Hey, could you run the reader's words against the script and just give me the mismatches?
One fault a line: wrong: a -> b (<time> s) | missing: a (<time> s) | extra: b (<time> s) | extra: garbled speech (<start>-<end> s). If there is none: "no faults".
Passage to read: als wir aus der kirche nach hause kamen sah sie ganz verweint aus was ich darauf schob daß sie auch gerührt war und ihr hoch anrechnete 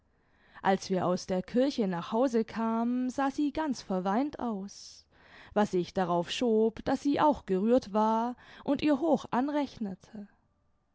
no faults